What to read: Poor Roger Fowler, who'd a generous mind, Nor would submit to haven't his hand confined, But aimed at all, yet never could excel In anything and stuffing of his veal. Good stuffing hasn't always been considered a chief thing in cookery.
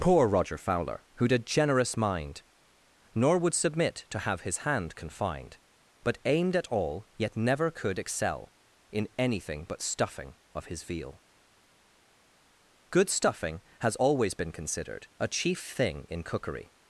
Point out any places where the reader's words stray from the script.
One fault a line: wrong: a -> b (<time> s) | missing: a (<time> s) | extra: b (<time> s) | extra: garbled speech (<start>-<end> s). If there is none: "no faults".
wrong: haven't -> have (4.2 s)
wrong: and -> but (9.7 s)
wrong: hasn't -> has (13.8 s)